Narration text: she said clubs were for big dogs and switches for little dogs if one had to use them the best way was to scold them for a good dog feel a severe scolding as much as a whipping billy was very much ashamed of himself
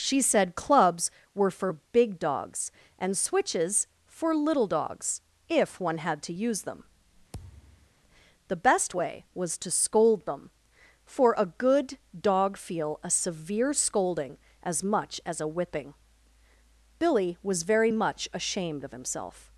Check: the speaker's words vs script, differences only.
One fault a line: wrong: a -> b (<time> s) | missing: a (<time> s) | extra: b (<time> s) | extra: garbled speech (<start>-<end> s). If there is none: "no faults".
no faults